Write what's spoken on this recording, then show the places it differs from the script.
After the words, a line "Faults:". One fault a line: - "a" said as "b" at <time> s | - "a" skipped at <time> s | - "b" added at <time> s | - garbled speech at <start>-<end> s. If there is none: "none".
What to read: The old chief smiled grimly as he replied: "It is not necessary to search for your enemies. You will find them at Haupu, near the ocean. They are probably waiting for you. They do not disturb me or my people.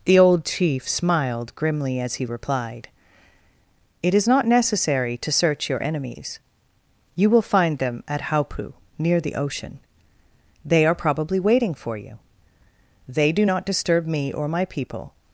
The old chief smiled grimly as he replied: "It is not necessary to search your enemies. You will find them at Haupu, near the ocean. They are probably waiting for you. They do not disturb me or my people.
Faults:
- "for" skipped at 5.7 s